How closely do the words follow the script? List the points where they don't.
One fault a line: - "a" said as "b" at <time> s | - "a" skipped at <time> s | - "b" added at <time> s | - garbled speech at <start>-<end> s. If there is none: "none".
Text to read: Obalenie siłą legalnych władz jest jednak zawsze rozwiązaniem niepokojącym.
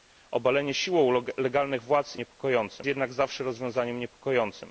- "jest" said as "niepokojącym" at 2.2 s